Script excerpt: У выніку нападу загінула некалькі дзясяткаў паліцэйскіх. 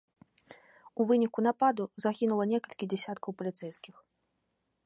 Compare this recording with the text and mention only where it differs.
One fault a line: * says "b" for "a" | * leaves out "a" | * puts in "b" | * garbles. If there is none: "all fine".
all fine